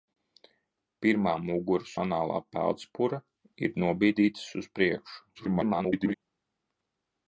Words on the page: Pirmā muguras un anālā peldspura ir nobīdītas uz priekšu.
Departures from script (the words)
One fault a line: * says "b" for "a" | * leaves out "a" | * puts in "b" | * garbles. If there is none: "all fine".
* leaves out "un"
* garbles